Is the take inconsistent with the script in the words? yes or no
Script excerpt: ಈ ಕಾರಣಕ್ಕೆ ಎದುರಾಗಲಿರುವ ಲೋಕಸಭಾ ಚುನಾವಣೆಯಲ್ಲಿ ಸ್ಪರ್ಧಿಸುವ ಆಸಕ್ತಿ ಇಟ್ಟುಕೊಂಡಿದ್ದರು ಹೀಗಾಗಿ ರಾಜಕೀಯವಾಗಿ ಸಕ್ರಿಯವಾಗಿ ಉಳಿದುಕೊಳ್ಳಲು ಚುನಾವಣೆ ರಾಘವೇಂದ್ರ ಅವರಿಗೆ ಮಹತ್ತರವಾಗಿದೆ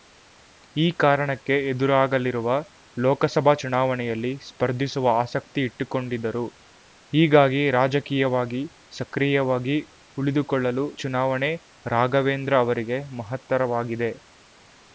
no